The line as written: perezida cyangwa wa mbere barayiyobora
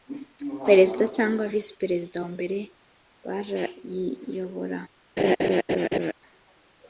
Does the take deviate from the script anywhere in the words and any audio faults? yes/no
yes